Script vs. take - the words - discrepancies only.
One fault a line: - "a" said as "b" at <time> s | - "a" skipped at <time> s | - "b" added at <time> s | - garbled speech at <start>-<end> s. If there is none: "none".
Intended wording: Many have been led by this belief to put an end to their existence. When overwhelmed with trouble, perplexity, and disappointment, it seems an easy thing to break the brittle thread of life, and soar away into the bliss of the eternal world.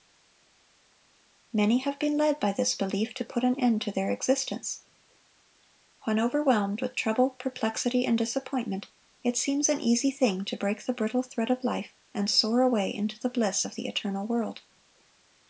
none